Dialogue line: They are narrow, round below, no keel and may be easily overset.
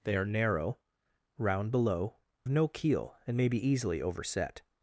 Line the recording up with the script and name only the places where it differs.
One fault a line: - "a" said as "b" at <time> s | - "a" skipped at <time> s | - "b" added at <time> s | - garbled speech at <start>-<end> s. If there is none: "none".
none